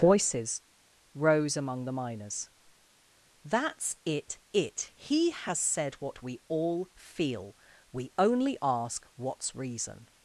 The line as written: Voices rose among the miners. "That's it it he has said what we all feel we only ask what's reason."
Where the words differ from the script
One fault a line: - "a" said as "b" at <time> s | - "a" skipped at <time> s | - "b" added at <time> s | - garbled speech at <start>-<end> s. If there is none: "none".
none